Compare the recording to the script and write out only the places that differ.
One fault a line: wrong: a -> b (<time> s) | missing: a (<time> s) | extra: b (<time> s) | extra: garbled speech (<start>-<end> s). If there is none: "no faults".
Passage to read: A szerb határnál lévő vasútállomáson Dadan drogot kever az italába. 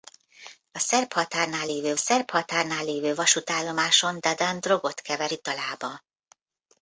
extra: szerb határnál lévő (2.0 s)
missing: az (5.3 s)